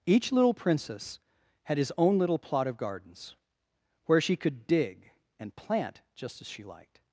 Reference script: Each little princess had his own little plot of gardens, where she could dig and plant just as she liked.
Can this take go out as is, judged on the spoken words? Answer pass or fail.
pass